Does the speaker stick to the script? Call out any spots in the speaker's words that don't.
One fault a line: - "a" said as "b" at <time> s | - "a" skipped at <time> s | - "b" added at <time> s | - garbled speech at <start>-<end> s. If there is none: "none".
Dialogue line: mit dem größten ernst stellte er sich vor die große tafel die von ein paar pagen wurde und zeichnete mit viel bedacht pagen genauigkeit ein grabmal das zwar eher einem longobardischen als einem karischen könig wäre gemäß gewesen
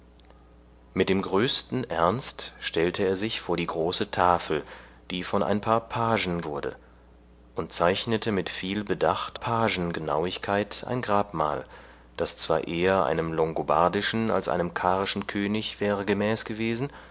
none